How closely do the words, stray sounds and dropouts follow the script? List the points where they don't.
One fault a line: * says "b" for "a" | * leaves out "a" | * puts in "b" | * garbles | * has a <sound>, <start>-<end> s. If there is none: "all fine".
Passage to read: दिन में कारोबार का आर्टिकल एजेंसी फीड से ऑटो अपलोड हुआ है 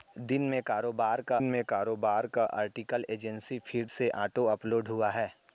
* puts in "में कारोबार का"